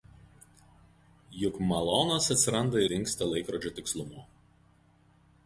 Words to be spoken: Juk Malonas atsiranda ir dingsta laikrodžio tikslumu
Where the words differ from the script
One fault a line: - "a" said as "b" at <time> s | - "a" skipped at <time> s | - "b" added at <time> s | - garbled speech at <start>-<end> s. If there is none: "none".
- "ir" skipped at 2.8 s